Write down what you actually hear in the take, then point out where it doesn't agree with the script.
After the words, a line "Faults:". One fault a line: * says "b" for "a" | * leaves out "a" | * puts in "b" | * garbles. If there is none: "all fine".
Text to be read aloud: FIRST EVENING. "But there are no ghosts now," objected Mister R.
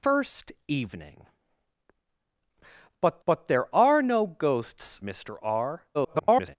FIRST EVENING. "But but there are no ghosts Mister R. [garbled]
Faults:
* puts in "but"
* leaves out "now objected"
* garbles